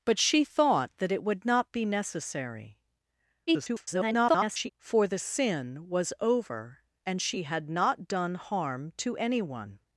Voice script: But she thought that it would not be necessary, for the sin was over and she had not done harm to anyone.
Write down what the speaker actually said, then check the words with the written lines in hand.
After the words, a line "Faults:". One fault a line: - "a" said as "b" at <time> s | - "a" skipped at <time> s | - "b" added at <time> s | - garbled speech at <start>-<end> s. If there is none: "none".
But she thought that it would not be necessary, [garbled] for the sin was over and she had not done harm to anyone.
Faults:
- garbled speech at 3.5-4.7 s